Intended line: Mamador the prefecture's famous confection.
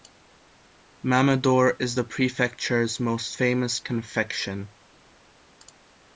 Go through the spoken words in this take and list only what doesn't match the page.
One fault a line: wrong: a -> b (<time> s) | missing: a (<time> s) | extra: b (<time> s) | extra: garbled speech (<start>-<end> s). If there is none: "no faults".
extra: is (1.8 s)
extra: most (3.0 s)